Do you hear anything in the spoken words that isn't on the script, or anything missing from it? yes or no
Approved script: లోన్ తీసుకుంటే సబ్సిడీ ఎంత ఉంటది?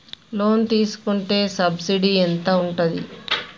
no